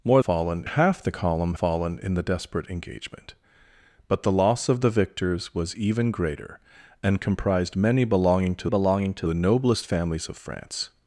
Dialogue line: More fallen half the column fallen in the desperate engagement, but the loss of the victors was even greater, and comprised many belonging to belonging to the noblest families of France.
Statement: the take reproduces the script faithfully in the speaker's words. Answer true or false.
true